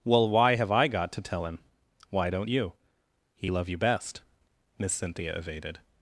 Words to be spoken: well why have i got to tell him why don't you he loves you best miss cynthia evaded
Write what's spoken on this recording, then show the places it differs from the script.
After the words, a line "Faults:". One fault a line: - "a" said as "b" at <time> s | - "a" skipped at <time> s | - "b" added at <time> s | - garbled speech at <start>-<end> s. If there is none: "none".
well why have i got to tell him why don't you he love you best miss cynthia evaded
Faults:
- "loves" said as "love" at 3.5 s